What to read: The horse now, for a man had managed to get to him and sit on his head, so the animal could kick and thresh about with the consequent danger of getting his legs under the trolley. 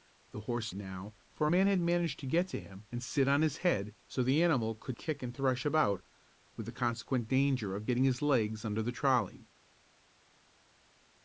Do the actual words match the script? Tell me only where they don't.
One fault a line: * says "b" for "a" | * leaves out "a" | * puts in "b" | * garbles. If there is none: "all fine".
all fine